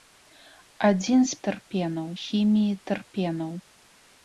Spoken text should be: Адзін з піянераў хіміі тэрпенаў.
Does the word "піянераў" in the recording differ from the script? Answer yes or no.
yes